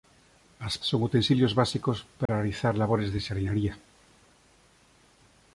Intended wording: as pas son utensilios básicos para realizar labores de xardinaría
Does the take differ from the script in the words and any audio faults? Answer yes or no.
yes